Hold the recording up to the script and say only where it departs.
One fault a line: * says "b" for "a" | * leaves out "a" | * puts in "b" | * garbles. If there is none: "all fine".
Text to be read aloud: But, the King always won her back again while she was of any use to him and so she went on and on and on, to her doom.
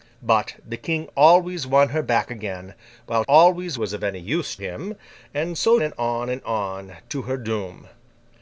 * says "always" for "she"
* leaves out "to"
* leaves out "she went on"